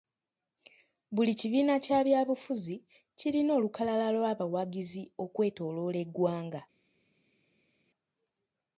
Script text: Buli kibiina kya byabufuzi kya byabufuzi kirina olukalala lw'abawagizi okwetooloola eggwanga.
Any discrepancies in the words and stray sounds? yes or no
yes